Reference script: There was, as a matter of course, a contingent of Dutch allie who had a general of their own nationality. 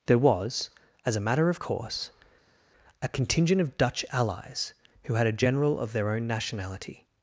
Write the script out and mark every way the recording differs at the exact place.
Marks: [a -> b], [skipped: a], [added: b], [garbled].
There was, as a matter of course, a contingent of Dutch [allie -> allies] who had a general of their own nationality.